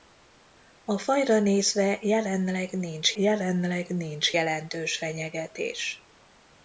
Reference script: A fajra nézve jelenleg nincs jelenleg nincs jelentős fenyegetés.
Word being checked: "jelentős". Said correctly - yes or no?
yes